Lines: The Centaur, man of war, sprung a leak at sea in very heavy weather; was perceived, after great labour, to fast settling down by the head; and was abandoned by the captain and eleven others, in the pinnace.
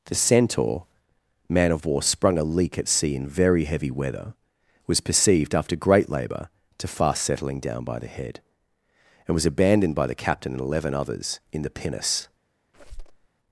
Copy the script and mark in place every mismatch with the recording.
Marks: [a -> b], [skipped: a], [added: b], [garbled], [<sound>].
The Centaur, man of war, sprung a leak at sea in very heavy weather; was perceived, after great labour, to fast settling down by the head; and was abandoned by the captain and eleven others, in the pinnace. [squeak]